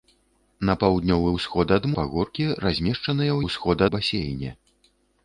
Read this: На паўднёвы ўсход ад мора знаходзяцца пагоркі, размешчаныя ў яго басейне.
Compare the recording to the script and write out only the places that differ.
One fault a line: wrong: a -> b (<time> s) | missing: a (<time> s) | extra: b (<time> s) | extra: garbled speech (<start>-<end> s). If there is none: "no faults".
missing: мора знаходзяцца (1.9 s)
wrong: яго -> ўсход (3.4 s)